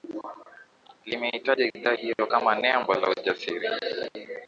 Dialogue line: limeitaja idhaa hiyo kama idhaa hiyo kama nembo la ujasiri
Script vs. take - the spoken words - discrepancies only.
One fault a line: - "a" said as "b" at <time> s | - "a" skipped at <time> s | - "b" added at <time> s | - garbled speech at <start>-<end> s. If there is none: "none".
- "idhaa hiyo kama" skipped at 2.5 s